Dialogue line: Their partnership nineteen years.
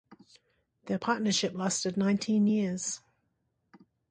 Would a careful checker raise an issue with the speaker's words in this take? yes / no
yes